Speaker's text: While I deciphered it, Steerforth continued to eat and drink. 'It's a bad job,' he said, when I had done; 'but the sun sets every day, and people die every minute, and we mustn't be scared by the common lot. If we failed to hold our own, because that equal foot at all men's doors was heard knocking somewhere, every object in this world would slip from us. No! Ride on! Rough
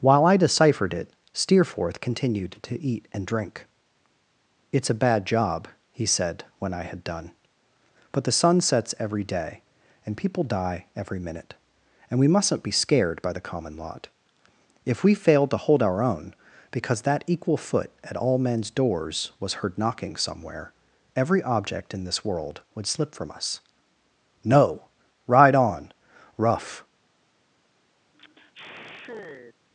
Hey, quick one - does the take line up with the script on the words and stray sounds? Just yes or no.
no